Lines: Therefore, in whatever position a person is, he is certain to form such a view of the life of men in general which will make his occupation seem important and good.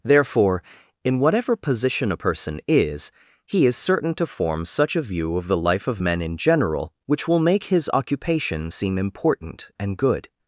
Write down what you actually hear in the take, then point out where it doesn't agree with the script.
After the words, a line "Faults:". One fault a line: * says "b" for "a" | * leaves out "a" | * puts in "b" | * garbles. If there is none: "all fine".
Therefore, in whatever position a person is, he is certain to form such a view of the life of men in general which will make his occupation seem important and good.
Faults:
all fine